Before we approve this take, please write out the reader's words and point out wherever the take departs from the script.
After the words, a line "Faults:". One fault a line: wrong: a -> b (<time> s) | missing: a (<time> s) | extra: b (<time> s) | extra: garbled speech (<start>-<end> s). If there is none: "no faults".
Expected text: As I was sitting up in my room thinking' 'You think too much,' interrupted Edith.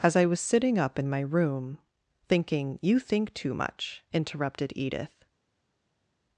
As I was sitting up in my room thinking' 'You think too much,' interrupted Edith.
Faults:
no faults